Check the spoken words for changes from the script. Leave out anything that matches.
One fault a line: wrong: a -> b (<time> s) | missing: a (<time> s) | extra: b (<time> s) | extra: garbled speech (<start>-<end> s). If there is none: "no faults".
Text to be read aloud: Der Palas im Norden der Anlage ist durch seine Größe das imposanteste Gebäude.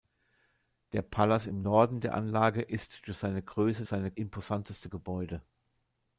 wrong: das -> seine (3.9 s)